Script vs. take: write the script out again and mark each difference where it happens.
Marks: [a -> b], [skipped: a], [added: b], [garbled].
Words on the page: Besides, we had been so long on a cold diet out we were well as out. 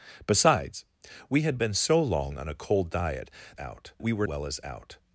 Besides, we had been so long on a cold diet out we were well as out.